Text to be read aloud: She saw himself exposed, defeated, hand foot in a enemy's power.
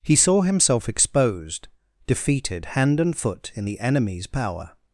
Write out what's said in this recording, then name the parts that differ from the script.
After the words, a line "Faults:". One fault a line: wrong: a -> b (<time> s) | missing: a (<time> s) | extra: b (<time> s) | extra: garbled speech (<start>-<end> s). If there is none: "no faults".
He saw himself exposed, defeated, hand and foot in the enemy's power.
Faults:
wrong: She -> He (0.0 s)
extra: and (3.0 s)
wrong: a -> the (3.6 s)